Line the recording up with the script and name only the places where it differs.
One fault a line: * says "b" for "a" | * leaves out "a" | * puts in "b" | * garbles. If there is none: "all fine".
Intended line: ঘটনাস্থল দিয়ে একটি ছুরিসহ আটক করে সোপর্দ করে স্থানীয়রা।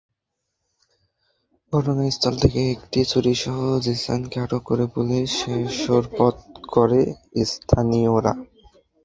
* says "থেকে" for "দিয়ে"
* puts in "জিসানকে"
* puts in "পুলিশে"